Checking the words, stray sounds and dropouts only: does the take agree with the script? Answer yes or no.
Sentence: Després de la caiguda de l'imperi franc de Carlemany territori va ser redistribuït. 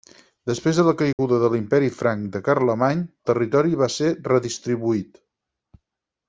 no